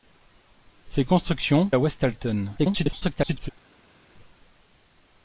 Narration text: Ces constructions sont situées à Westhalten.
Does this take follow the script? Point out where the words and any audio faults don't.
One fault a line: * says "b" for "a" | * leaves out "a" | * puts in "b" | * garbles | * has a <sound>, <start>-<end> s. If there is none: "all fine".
* leaves out "sont situées"
* garbles